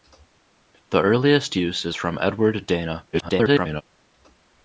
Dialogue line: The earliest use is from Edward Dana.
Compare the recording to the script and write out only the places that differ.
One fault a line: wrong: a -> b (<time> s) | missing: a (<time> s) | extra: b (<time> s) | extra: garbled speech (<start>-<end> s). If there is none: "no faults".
extra: garbled speech (3.1-3.8 s)